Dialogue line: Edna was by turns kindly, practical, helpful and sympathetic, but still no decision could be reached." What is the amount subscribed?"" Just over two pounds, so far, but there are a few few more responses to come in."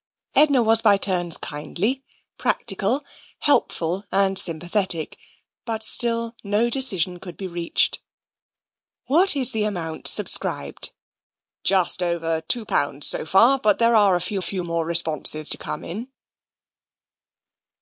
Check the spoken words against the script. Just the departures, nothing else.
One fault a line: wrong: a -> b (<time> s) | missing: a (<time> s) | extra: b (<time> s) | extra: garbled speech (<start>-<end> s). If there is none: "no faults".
no faults